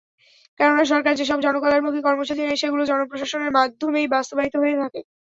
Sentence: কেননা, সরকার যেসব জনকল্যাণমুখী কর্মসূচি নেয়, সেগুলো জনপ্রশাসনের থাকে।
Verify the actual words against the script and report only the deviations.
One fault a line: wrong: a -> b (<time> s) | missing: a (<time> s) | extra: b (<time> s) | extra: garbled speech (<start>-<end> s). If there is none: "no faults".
extra: মাধ্যমেই বাস্তবায়িত হয়ে (3.6 s)